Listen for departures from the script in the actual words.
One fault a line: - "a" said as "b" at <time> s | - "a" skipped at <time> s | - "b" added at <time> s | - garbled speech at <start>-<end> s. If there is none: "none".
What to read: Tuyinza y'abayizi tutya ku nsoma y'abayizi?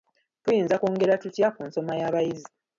- "y'abayizi" said as "kwongera" at 0.8 s